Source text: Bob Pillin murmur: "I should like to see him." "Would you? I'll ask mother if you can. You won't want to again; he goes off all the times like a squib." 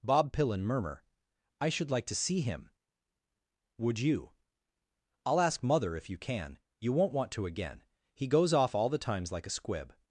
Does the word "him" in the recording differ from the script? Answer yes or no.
no